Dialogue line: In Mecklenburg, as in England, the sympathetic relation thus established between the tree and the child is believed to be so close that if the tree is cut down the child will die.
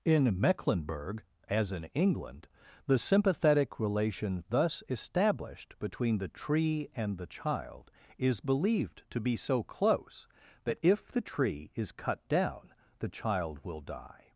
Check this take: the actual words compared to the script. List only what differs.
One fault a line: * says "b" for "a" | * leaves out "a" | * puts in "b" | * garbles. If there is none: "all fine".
all fine